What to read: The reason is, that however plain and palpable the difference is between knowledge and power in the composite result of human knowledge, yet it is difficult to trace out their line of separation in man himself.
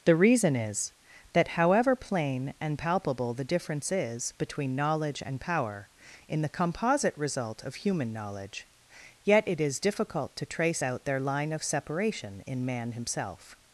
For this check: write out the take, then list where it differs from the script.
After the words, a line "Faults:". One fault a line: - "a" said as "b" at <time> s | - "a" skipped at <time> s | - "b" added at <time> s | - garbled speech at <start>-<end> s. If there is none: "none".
The reason is, that however plain and palpable the difference is between knowledge and power in the composite result of human knowledge, yet it is difficult to trace out their line of separation in man himself.
Faults:
none